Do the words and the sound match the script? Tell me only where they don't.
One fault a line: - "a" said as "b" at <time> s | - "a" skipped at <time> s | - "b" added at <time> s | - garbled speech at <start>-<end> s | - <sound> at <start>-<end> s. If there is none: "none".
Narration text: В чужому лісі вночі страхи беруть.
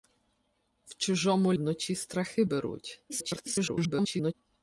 - "лісі" skipped at 1.5 s
- garbled speech at 3.1-4.3 s